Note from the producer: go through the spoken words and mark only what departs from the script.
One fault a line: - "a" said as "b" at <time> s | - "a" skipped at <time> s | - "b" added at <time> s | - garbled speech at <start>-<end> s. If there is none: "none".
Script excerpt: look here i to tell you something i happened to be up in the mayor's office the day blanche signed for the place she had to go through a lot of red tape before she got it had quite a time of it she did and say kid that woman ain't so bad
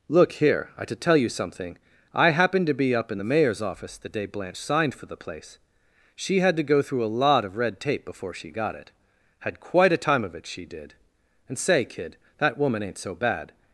none